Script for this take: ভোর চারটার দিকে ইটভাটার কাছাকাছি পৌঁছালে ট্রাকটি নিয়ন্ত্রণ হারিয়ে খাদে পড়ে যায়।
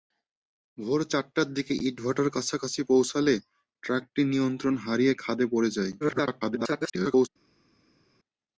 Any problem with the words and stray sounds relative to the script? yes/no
yes